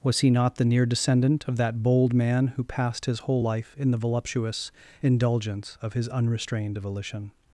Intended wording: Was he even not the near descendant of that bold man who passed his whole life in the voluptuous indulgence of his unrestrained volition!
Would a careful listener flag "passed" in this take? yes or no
no